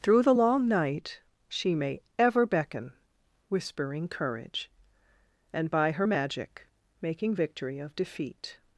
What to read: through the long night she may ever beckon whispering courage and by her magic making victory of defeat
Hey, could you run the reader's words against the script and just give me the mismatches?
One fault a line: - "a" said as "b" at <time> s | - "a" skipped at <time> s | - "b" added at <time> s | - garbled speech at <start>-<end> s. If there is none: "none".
none